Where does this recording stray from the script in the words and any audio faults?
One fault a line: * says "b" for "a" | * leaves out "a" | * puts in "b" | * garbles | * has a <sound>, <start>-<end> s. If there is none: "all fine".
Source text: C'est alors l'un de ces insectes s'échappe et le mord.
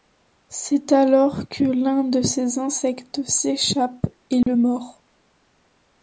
* puts in "que"
* has a dropout, 4.4-4.5 s